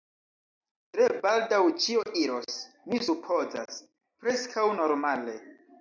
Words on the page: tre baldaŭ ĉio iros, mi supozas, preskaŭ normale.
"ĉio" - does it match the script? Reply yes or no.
yes